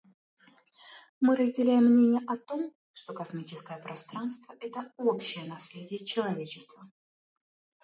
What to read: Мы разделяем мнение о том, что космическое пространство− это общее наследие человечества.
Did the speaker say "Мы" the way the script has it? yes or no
yes